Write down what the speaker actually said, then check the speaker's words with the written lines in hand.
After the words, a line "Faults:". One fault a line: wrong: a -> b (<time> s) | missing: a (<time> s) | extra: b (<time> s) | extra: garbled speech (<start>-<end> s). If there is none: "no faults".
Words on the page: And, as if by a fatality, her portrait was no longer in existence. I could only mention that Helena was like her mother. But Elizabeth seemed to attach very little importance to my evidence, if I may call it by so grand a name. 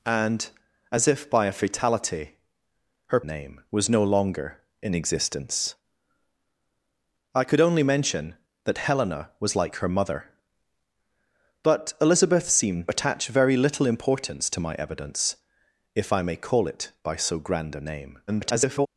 And, as if by a fatality, her name was no longer in existence. I could only mention that Helena was like her mother. But Elizabeth seemed attach very little importance to my evidence, if I may call it by so grand a name. [garbled]
Faults:
wrong: portrait -> name (3.2 s)
missing: to (12.9 s)
extra: garbled speech (18.3-18.9 s)